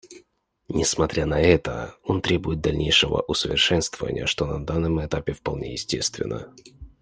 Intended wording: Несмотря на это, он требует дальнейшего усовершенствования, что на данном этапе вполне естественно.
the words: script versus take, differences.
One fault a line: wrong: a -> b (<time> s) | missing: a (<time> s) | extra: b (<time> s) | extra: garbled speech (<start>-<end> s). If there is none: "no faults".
no faults